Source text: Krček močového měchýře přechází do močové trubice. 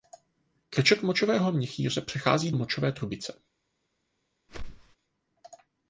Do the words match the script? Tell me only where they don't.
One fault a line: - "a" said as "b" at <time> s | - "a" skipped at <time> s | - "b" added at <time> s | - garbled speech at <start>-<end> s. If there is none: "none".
- "do" skipped at 2.5 s